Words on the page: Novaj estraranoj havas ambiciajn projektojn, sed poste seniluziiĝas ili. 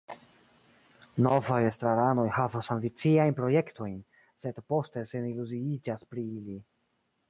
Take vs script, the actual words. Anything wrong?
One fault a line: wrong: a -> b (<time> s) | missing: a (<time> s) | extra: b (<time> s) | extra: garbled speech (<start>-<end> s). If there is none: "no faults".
extra: pri (6.2 s)